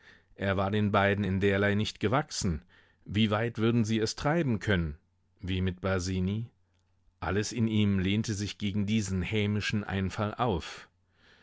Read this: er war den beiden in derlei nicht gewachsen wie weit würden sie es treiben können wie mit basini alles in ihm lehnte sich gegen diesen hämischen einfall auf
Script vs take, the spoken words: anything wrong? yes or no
no